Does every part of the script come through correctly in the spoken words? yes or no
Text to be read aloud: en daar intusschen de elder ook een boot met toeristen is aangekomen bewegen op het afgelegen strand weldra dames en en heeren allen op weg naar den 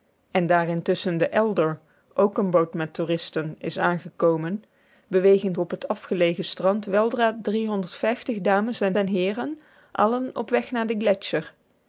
yes